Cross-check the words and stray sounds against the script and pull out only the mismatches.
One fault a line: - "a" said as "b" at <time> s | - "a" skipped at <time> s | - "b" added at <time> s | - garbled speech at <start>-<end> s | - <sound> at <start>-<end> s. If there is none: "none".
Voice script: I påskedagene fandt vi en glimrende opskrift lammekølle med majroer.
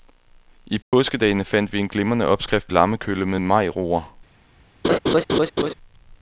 - dropout at 0.8-0.9 s
- laugh at 4.8-5.7 s